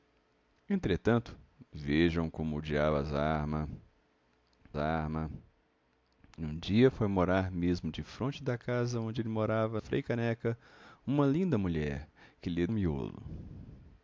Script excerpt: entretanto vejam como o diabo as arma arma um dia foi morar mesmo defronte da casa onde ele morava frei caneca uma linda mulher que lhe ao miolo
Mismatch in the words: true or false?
false